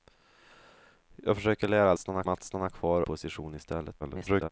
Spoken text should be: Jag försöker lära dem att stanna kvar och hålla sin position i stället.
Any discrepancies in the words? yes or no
yes